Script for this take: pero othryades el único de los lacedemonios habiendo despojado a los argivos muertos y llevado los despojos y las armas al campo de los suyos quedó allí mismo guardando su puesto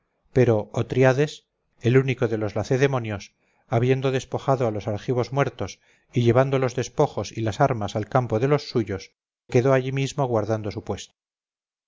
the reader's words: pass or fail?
pass